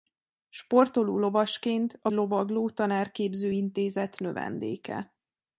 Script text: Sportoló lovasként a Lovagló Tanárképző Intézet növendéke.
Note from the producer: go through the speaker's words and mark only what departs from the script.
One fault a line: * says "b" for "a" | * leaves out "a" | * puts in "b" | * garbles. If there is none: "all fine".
all fine